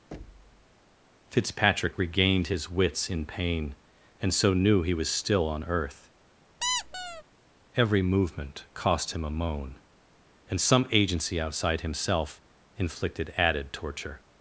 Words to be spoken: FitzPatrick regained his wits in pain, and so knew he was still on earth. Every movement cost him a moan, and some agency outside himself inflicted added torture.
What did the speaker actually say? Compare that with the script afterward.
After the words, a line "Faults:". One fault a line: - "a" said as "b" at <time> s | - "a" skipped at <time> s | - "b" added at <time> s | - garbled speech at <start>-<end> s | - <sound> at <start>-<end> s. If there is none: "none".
FitzPatrick regained his wits in pain, and so knew he was still on earth. Every movement cost him a moan, and some agency outside himself inflicted added torture.
Faults:
- thud at 0.1-0.8 s
- squeak at 6.6-7.2 s